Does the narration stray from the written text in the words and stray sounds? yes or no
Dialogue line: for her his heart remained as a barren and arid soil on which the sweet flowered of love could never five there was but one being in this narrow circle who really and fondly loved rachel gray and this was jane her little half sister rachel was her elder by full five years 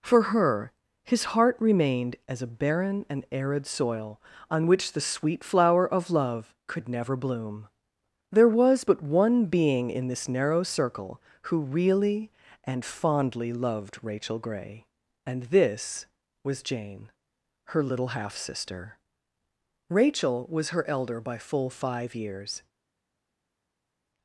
yes